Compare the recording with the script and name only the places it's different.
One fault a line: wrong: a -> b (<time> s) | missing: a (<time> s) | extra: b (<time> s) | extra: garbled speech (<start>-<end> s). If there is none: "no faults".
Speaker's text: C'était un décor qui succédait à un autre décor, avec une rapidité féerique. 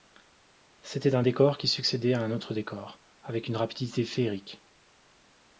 no faults